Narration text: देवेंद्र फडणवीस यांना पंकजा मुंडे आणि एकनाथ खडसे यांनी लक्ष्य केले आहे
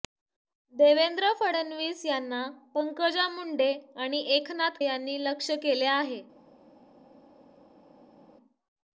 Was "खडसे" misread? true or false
true